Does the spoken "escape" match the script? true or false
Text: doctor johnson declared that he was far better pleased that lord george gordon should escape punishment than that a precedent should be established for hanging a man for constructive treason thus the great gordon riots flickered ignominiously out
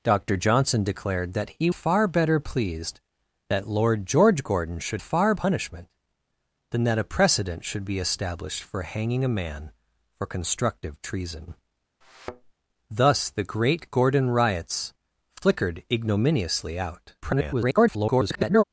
false